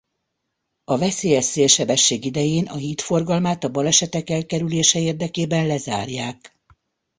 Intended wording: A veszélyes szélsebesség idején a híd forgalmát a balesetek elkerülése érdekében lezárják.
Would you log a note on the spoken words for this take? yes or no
no